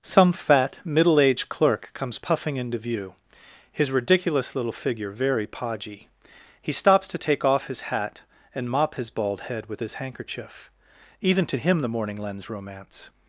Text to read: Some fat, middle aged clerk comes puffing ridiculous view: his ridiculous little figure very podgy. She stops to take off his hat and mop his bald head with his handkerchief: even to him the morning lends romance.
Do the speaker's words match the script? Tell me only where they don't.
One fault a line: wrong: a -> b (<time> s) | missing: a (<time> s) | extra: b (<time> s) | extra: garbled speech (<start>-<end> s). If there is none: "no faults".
wrong: ridiculous -> into (2.6 s)
wrong: She -> He (6.6 s)